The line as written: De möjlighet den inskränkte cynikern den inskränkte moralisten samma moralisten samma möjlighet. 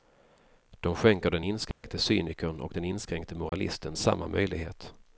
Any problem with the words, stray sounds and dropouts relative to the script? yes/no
yes